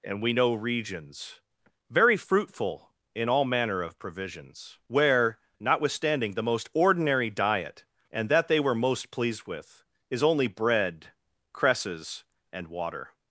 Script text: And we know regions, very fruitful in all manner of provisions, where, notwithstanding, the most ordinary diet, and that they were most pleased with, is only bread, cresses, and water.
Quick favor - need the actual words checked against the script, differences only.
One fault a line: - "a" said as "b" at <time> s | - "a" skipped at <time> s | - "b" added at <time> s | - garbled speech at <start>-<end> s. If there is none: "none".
none